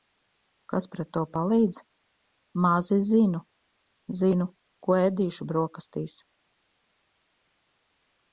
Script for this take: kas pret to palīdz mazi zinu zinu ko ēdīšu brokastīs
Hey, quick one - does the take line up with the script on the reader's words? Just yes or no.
yes